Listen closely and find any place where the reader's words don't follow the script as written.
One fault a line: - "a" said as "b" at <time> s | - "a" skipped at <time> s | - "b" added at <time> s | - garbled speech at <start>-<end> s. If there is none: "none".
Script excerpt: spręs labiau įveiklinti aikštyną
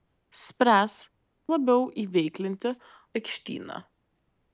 none